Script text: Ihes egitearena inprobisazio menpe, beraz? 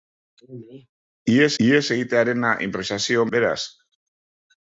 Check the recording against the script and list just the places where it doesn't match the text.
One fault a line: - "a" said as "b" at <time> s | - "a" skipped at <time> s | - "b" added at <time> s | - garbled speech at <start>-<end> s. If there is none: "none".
- "ihes" added at 1.7 s
- "menpe" skipped at 3.3 s